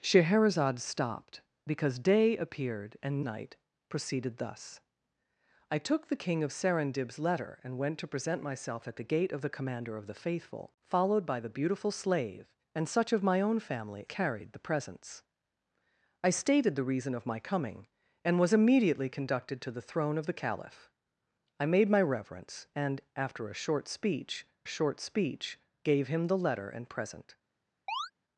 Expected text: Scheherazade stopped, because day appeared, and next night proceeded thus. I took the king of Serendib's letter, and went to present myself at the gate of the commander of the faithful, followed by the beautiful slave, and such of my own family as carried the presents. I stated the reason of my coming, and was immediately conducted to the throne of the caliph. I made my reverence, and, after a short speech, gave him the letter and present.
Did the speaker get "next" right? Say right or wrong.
wrong